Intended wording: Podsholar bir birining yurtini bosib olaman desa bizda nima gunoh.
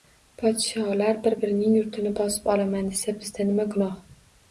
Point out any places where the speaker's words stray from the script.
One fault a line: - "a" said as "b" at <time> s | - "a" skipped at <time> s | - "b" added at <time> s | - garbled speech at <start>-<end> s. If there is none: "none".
none